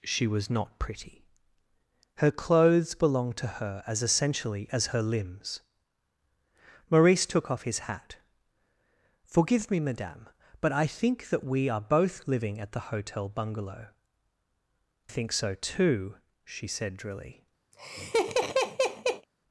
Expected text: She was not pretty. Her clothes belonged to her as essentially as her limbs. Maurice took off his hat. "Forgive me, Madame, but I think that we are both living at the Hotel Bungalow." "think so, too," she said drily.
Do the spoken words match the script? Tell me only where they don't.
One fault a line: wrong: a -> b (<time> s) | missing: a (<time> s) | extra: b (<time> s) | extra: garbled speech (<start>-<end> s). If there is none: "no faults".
no faults